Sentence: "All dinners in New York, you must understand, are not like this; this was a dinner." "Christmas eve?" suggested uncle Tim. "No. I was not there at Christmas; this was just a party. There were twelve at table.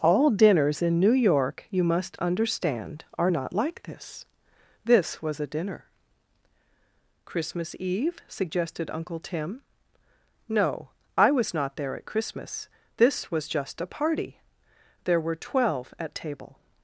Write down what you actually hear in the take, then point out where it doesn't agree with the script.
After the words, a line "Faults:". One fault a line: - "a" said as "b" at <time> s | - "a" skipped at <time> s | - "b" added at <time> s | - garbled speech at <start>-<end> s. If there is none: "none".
"All dinners in New York, you must understand, are not like this; this was a dinner." "Christmas eve?" suggested uncle Tim. "No. I was not there at Christmas; this was just a party. There were twelve at table.
Faults:
none